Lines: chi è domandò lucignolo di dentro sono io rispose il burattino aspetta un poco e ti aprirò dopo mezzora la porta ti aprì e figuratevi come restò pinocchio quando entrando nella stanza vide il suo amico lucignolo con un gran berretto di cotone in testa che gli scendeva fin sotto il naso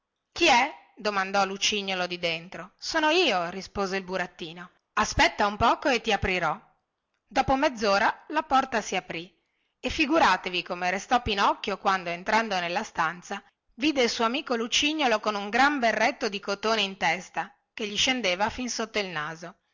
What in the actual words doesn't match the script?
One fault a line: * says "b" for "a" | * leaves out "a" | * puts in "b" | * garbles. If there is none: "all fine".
* says "si" for "ti"